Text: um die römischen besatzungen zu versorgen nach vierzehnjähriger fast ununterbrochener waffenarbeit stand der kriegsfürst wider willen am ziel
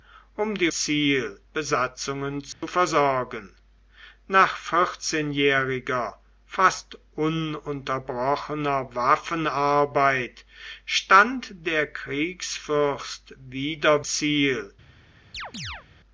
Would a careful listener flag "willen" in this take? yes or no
yes